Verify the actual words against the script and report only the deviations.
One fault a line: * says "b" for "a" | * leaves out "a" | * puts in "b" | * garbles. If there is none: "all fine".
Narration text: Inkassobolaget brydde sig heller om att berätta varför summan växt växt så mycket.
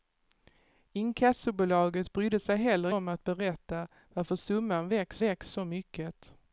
all fine